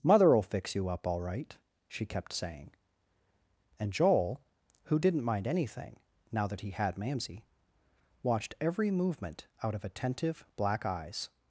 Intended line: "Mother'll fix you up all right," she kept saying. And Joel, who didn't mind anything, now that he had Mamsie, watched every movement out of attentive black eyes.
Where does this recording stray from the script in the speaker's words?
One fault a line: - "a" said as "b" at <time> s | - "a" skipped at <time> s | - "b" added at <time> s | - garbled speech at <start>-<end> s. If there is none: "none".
none